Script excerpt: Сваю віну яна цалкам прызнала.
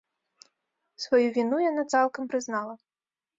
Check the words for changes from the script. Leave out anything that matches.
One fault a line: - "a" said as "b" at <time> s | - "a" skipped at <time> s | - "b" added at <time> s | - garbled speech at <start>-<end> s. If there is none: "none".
none